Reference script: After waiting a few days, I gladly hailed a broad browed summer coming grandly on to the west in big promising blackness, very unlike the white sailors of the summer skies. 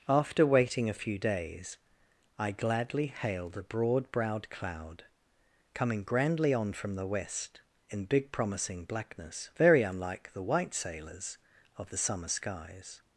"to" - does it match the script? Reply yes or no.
no